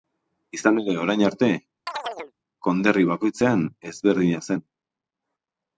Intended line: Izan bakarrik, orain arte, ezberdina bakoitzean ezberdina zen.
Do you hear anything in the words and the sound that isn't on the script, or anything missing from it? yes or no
yes